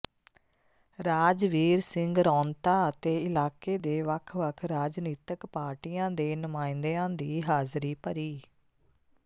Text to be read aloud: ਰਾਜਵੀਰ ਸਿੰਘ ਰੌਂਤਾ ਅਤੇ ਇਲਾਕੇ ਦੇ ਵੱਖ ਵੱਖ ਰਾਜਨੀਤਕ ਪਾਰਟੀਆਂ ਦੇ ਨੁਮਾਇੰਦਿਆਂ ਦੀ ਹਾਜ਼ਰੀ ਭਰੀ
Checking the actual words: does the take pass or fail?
pass